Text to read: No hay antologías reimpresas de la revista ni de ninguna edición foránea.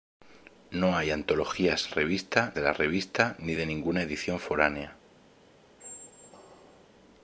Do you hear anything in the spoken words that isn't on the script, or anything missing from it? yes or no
yes